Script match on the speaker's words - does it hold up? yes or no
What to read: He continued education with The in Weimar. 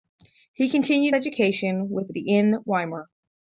yes